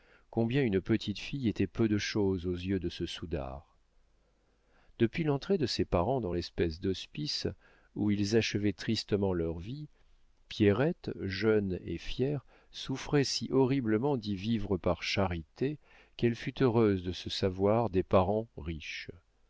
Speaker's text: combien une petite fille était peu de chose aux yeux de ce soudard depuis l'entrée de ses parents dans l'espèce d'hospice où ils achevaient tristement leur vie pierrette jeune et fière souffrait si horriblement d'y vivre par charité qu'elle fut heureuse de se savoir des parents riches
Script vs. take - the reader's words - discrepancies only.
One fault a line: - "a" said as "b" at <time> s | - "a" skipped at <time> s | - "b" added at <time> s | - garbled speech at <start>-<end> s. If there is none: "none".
none